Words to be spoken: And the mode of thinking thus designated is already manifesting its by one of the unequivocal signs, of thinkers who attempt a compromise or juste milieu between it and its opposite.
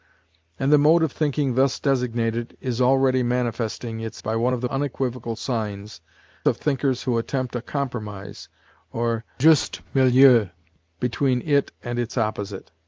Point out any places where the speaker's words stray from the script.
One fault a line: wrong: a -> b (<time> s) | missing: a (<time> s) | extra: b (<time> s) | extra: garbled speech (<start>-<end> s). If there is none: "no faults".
no faults